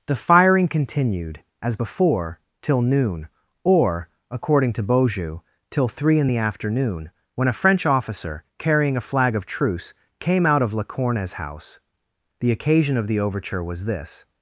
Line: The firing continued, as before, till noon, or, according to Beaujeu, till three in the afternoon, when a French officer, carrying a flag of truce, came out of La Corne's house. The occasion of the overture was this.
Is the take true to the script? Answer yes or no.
yes